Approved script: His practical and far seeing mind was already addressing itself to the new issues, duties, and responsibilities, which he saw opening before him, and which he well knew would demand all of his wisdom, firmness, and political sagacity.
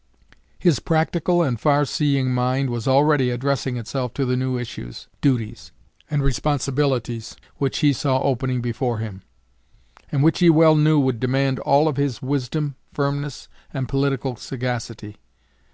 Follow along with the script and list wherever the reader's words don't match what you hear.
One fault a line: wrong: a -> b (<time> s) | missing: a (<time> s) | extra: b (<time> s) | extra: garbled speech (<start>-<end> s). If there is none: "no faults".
no faults